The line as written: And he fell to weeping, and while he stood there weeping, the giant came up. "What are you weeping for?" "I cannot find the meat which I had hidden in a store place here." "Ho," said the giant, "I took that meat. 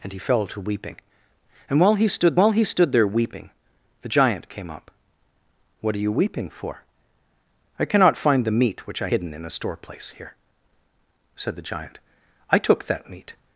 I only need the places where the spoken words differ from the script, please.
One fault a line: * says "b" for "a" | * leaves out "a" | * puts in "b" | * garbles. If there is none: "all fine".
* puts in "while he stood"
* leaves out "had"
* leaves out "Ho"